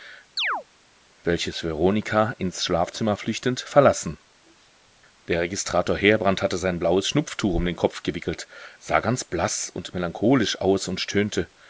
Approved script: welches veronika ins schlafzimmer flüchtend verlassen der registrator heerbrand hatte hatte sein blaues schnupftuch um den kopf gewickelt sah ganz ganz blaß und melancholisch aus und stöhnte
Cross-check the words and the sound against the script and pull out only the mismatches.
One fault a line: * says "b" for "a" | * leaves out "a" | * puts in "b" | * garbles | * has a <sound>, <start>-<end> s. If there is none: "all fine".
* has a chirp, 0.4-0.6 s
* leaves out "hatte"
* leaves out "ganz"